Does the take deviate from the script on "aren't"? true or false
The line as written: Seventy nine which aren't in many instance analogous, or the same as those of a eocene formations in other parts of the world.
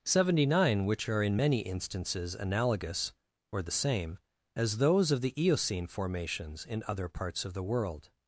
true